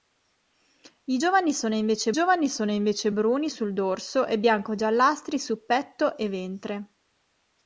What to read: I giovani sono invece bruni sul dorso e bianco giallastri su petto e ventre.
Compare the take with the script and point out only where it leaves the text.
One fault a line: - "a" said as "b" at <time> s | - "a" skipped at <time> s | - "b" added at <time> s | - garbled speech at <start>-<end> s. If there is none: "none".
- "giovani sono invece" added at 2.1 s